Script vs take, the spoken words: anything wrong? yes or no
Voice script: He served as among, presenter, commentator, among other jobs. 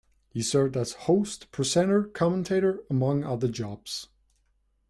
yes